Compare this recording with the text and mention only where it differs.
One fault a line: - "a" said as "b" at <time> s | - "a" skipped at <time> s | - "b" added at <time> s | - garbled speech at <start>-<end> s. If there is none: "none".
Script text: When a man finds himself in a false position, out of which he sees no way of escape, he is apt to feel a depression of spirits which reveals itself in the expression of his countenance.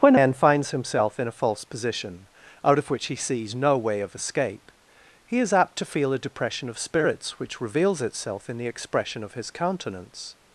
- "a" skipped at 0.1 s